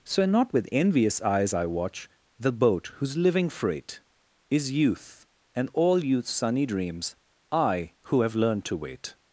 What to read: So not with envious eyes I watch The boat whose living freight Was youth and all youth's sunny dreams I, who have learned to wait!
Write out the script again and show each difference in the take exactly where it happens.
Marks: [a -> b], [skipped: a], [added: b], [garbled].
So not with envious eyes I watch The boat whose living freight [Was -> Is] youth and all youth's sunny dreams I, who have learned to wait!